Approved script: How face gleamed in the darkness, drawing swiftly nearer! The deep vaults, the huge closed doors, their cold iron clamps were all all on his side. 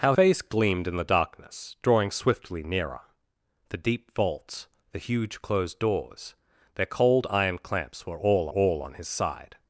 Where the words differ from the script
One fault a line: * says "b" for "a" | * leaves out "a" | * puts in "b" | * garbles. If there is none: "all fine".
all fine